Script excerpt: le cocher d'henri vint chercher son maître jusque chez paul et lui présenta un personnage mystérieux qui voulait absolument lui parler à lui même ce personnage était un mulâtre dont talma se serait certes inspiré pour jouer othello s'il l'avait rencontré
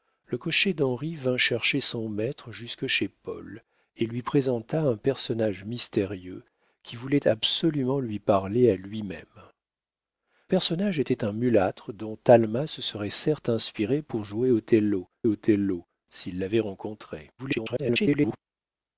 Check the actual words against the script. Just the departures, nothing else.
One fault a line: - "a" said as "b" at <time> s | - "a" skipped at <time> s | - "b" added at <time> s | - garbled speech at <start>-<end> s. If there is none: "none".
- "ce" skipped at 9.3 s
- "othello" added at 15.3 s
- garbled speech at 17.4-18.4 s